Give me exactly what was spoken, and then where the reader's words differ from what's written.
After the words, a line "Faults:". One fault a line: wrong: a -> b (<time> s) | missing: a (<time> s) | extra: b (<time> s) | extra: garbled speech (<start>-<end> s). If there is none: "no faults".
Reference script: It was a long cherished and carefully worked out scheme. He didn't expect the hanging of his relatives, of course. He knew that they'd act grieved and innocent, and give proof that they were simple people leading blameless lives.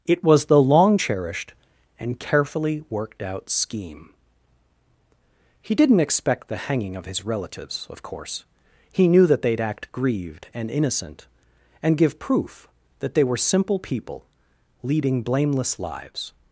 It was the long cherished and carefully worked out scheme. He didn't expect the hanging of his relatives, of course. He knew that they'd act grieved and innocent, and give proof that they were simple people leading blameless lives.
Faults:
wrong: a -> the (0.5 s)